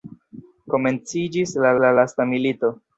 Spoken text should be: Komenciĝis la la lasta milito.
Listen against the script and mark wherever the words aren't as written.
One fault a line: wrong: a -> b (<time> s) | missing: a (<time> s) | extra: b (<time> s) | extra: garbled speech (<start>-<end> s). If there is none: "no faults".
no faults